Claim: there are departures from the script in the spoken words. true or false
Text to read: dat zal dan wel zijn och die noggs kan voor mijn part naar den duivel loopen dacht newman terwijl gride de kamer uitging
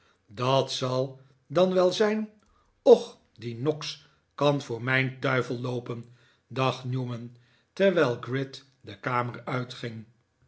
true